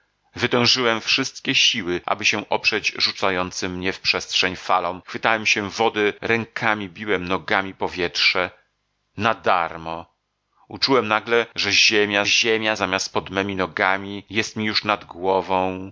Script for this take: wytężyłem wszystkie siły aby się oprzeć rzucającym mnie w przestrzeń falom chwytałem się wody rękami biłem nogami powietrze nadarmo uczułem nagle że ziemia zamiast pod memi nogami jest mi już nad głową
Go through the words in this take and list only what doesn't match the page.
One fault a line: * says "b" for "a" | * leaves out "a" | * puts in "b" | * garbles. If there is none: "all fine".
* puts in "ziemia"